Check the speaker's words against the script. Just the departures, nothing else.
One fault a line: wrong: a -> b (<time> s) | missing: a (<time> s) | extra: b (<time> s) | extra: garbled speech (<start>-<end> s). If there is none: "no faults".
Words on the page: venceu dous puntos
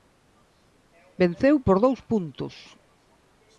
extra: por (1.6 s)